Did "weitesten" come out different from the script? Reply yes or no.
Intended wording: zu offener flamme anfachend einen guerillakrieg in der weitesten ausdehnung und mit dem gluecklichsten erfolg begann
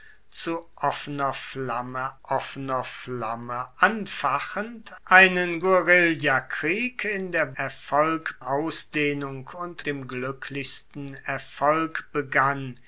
yes